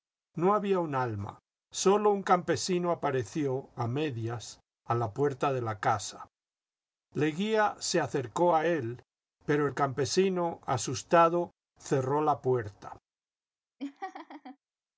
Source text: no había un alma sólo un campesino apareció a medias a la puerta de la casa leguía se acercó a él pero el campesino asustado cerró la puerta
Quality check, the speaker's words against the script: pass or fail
pass